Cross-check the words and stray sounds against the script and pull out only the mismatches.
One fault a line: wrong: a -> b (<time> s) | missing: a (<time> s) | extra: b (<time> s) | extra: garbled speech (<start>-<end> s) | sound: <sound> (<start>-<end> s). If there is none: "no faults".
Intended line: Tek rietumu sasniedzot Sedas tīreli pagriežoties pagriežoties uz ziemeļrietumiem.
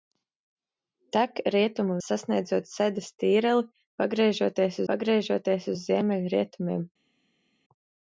no faults